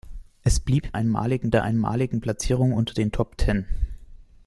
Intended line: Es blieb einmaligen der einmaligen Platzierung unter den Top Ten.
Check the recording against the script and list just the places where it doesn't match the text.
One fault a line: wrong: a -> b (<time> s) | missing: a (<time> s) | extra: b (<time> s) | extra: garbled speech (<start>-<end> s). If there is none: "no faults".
no faults